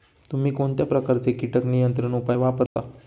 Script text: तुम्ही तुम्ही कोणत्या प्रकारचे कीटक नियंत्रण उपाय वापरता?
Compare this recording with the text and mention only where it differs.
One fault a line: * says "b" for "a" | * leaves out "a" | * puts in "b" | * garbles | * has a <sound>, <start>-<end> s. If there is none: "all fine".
* leaves out "तुम्ही"
* has a dropout, 2.7-2.8 s